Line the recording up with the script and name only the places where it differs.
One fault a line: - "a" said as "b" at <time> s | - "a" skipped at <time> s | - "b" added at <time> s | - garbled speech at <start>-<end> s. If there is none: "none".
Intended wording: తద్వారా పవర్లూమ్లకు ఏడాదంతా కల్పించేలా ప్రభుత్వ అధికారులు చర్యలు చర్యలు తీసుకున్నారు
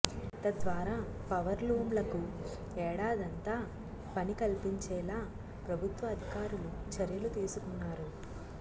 - "పని" added at 4.2 s
- "చర్యలు" skipped at 7.3 s